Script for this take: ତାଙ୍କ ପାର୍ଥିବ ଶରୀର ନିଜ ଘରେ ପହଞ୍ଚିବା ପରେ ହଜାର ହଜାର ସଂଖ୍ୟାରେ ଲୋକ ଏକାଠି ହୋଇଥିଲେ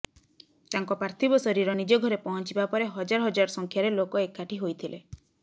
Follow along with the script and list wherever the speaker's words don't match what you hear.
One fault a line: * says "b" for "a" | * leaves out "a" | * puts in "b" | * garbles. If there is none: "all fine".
all fine